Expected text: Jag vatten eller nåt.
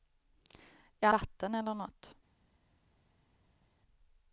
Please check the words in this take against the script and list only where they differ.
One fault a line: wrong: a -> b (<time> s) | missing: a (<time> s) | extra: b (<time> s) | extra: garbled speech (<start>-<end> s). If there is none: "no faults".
no faults